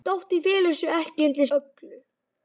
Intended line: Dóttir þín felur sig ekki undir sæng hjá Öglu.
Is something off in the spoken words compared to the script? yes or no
yes